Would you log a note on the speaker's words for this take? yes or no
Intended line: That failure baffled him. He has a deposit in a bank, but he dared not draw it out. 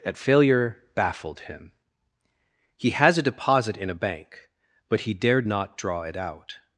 no